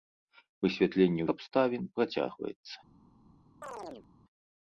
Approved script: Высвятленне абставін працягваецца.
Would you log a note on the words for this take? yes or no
no